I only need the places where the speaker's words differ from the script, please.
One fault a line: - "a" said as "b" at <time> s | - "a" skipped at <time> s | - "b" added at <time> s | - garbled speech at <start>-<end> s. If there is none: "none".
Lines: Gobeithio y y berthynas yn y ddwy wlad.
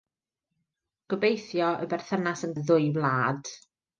none